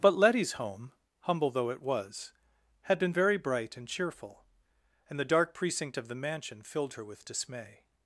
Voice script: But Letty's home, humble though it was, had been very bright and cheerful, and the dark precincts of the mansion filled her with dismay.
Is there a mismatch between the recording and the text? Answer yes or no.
yes